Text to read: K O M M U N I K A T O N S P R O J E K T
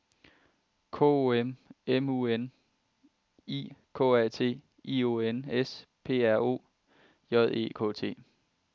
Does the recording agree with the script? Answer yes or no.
no